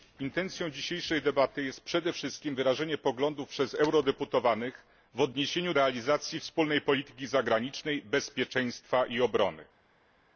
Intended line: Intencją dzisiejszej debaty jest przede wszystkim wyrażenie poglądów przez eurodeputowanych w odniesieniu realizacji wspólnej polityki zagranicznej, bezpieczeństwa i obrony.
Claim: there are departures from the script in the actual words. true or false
false